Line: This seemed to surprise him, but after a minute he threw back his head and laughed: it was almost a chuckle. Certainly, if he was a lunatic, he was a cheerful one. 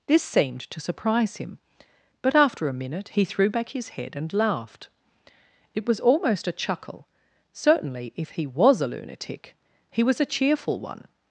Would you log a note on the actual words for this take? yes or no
no